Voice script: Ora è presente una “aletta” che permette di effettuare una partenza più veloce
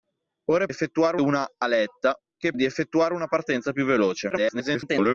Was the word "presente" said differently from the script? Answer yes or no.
yes